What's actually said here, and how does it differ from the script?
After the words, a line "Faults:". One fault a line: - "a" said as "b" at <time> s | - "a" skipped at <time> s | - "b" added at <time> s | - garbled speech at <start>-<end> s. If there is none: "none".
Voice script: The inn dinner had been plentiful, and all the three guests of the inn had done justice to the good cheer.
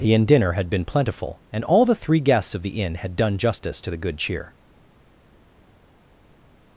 The inn dinner had been plentiful, and all the three guests of the inn had done justice to the good cheer.
Faults:
none